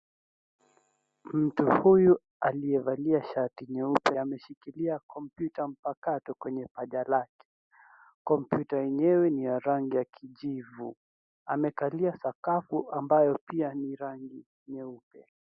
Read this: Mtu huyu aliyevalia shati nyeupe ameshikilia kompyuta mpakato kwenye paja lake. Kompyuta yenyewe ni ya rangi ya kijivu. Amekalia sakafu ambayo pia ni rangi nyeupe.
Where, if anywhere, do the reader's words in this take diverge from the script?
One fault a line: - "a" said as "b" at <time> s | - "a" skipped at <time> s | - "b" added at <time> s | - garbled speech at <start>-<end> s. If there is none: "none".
none